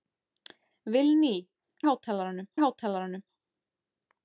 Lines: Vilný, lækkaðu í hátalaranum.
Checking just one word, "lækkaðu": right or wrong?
wrong